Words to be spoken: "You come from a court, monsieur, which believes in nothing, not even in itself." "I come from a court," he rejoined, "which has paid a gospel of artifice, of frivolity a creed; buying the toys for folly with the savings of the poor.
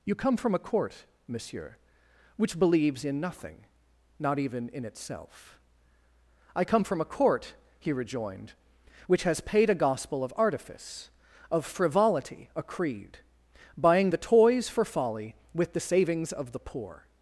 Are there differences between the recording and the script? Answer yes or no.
no